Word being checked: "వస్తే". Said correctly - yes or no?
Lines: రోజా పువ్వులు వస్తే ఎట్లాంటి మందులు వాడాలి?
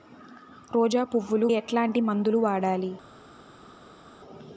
no